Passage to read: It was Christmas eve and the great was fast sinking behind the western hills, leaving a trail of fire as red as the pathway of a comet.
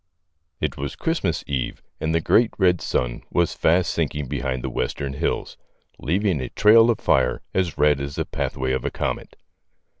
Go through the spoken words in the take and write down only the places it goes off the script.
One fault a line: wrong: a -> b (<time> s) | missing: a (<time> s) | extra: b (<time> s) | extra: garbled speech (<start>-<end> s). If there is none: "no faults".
extra: red sun (2.6 s)